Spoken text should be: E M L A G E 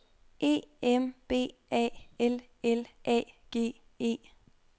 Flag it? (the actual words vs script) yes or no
yes